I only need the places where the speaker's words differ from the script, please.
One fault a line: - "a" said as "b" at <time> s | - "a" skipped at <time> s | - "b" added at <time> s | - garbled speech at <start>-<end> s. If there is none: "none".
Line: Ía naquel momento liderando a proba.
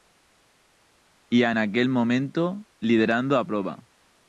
none